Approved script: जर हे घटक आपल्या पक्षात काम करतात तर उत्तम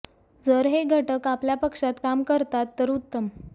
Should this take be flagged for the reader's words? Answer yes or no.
no